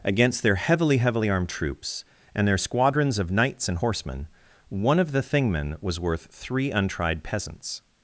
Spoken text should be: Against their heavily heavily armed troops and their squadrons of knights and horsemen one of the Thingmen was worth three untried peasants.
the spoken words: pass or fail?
pass